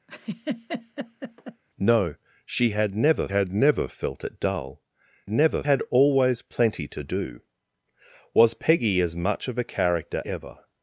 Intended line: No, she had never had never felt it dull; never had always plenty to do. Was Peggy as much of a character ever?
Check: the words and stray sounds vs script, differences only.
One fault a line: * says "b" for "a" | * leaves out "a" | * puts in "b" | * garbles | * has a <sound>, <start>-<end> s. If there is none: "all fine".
* has a laugh, 0.1-1.6 s